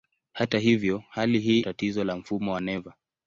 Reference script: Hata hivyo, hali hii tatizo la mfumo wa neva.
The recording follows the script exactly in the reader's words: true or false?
true